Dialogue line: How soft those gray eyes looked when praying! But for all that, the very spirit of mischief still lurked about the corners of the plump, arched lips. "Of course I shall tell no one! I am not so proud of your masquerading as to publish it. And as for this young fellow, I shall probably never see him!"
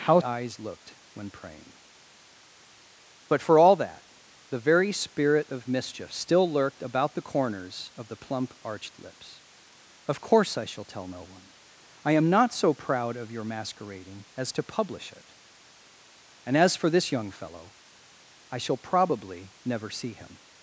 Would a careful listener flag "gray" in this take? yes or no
yes